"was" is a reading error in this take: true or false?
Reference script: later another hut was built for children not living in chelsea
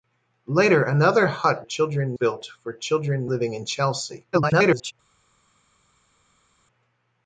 true